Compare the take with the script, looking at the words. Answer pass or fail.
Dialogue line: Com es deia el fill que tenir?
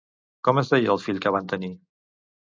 fail